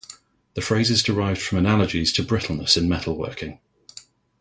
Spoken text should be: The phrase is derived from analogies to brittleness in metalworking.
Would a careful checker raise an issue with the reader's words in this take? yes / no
no